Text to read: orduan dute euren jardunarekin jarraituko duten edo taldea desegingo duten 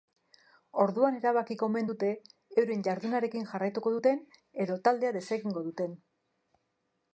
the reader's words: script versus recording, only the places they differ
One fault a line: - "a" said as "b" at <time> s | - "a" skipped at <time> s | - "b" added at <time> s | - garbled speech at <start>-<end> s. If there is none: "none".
- "erabakiko omen" added at 1.2 s